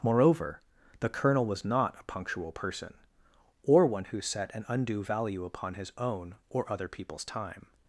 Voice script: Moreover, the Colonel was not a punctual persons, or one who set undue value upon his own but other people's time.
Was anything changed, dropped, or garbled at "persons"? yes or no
yes